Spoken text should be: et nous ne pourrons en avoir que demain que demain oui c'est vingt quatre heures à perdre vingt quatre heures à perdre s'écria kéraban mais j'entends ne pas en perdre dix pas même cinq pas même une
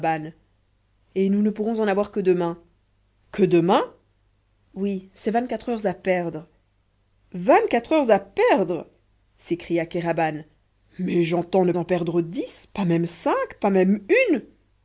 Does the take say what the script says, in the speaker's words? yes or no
no